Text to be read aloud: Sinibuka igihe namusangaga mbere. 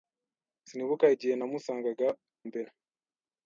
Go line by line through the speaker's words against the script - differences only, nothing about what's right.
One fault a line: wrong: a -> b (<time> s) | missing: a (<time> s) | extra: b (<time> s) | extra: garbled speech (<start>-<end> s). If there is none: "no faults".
no faults